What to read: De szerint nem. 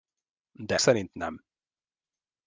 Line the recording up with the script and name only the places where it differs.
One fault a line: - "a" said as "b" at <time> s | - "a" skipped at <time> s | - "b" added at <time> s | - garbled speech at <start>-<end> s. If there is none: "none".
none